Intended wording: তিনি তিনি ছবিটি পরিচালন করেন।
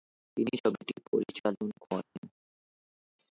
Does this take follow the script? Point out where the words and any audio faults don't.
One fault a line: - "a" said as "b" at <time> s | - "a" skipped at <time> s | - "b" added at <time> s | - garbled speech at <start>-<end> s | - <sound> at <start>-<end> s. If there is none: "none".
- "তিনি" skipped at 0.5 s
- dropout at 2.0-2.2 s